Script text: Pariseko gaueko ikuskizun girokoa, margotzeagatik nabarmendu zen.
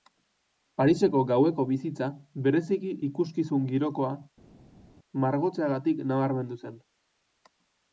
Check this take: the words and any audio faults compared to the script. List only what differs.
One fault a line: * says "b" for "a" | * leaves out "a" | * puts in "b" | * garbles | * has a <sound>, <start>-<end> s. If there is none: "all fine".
* puts in "bizitza bereziki"